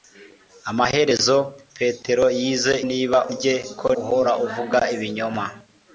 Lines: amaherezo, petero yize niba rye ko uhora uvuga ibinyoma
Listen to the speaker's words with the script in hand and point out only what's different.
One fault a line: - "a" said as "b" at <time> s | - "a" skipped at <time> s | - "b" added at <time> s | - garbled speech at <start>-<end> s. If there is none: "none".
none